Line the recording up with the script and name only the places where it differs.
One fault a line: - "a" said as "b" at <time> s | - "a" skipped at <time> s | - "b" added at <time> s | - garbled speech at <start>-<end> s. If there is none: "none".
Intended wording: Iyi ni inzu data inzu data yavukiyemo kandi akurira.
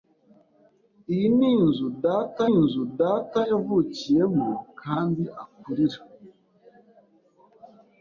none